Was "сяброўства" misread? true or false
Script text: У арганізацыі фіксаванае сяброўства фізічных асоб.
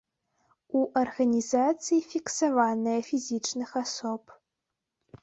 true